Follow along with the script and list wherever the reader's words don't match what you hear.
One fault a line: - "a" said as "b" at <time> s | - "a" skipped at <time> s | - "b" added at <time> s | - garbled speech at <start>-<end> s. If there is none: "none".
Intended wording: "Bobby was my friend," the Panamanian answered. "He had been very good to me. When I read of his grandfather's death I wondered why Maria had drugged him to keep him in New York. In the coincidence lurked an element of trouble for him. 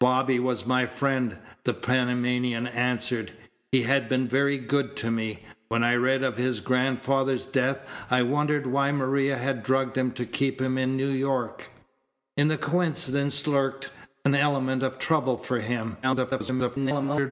- garbled speech at 16.0-17.3 s